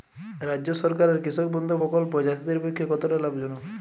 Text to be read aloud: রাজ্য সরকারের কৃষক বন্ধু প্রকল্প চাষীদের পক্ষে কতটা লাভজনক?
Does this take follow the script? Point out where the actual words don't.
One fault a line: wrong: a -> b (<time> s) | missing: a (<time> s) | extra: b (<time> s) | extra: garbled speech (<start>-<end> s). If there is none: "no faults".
no faults